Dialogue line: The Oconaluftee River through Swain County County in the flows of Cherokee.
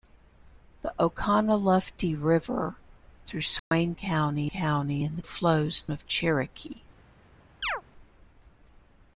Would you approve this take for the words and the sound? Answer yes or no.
no